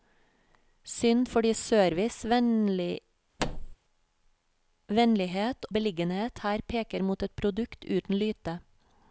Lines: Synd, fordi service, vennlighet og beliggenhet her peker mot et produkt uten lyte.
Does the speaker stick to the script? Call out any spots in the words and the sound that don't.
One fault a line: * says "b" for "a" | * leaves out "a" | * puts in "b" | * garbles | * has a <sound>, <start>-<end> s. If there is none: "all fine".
* has a thud, 3.4-3.8 s
* leaves out "og"